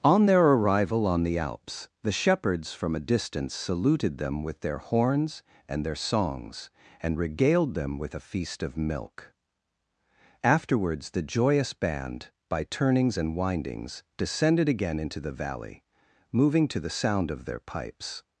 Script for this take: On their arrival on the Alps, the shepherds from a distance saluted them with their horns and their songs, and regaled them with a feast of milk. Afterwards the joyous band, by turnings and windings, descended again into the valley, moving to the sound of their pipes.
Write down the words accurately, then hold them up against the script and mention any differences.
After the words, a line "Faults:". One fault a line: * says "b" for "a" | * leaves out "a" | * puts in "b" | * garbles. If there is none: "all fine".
On their arrival on the Alps, the shepherds from a distance saluted them with their horns and their songs, and regaled them with a feast of milk. Afterwards the joyous band, by turnings and windings, descended again into the valley, moving to the sound of their pipes.
Faults:
all fine